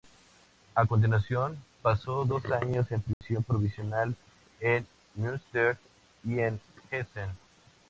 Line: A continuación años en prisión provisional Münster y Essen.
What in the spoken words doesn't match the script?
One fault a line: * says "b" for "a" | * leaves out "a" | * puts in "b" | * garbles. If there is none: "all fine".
* puts in "pasó dos"
* puts in "en"
* puts in "en"